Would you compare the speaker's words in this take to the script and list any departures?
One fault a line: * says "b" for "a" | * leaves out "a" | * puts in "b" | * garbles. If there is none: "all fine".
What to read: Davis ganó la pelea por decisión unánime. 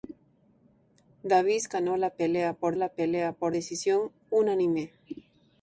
* puts in "la pelea por"